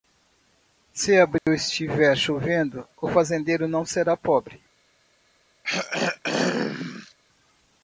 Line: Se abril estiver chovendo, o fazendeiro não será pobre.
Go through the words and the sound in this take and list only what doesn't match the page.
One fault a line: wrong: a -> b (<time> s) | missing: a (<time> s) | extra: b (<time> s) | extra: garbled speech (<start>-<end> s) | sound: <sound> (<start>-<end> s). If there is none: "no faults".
sound: dropout (1.4-1.5 s)
sound: throat clearing (5.6-7.1 s)